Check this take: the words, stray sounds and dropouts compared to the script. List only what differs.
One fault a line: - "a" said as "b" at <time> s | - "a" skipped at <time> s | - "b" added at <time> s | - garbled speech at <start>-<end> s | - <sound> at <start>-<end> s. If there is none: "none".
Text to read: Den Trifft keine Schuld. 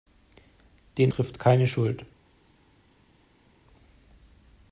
none